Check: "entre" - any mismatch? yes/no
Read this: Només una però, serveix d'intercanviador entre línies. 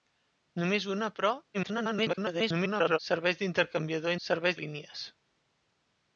yes